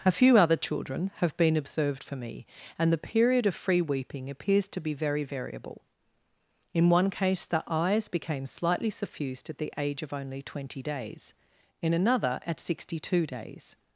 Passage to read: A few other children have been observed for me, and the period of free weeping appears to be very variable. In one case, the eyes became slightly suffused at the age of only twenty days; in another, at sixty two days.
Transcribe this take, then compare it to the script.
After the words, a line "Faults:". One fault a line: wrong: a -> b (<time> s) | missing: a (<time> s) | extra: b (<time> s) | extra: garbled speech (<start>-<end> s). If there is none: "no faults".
A few other children have been observed for me, and the period of free weeping appears to be very variable. In one case, the eyes became slightly suffused at the age of only twenty days; in another, at sixty two days.
Faults:
no faults